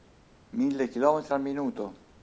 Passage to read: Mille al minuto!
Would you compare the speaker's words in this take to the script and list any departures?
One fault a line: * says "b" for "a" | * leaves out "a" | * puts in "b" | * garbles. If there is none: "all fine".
* puts in "chilometri"